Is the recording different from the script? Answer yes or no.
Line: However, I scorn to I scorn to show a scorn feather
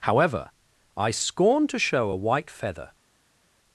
yes